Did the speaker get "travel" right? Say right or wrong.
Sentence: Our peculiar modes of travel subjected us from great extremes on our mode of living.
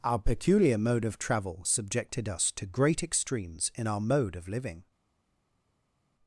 right